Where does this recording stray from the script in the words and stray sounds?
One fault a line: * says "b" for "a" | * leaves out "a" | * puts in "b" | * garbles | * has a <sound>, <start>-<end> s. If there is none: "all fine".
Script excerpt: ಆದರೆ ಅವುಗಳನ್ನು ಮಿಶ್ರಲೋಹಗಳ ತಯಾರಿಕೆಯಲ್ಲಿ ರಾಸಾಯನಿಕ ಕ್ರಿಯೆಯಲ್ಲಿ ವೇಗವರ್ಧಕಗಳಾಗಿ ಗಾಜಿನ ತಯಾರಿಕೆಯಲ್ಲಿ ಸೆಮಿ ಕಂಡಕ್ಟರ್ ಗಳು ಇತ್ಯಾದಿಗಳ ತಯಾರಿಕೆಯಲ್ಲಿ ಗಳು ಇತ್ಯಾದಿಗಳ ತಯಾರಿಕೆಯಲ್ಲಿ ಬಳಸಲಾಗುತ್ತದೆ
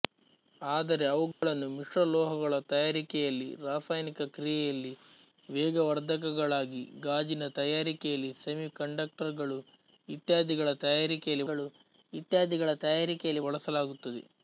* has a dropout, 1.3-1.4 s